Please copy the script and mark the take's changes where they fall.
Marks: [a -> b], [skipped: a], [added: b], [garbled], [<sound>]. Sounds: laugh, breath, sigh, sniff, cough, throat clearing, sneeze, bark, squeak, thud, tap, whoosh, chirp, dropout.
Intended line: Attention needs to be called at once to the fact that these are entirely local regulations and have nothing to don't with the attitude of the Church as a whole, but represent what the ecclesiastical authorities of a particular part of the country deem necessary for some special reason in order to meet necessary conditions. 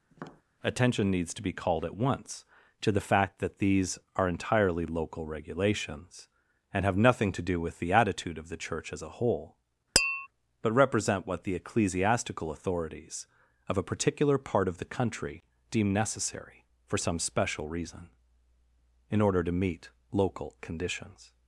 [tap] Attention needs to be called at once to the fact that these are entirely local regulations and have nothing to [don't -> do] with the attitude of the Church as a whole, [tap] but represent what the ecclesiastical authorities of a particular part of the country deem necessary for some special reason in order to meet [necessary -> local] conditions.